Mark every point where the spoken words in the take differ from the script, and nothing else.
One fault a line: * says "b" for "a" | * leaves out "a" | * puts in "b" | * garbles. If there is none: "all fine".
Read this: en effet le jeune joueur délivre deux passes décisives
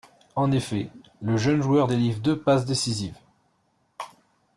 all fine